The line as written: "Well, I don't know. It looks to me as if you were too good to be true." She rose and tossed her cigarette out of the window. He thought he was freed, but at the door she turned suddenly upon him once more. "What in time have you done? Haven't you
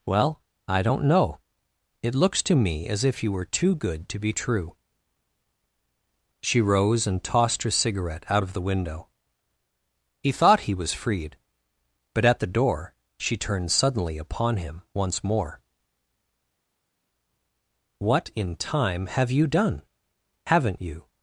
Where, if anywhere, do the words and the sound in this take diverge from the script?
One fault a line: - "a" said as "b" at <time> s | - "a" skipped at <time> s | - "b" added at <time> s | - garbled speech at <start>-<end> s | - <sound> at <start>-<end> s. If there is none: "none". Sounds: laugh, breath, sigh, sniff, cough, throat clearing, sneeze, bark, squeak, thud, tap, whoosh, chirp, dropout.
none